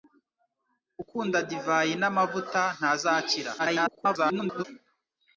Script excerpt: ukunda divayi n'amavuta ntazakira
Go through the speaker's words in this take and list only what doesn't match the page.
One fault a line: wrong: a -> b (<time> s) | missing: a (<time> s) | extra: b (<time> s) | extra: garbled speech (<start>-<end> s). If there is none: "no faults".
extra: garbled speech (3.6-4.6 s)